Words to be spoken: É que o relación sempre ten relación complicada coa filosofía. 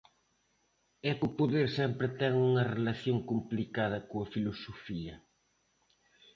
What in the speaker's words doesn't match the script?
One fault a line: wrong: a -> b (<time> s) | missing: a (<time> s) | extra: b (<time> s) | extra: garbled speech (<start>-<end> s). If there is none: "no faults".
wrong: relación -> poder (1.4 s)
extra: unha (2.5 s)